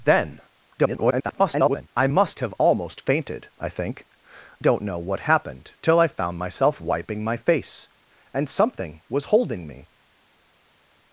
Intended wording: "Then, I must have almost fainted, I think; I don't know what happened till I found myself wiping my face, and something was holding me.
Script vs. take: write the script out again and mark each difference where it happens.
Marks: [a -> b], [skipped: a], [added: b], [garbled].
"Then, [garbled] I must have almost fainted, I think; [skipped: I] don't know what happened till I found myself wiping my face, and something was holding me.